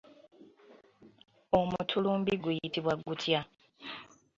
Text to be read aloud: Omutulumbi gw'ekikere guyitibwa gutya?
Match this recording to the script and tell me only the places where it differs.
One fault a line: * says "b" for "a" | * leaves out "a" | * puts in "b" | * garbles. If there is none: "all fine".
* leaves out "gw'ekikere"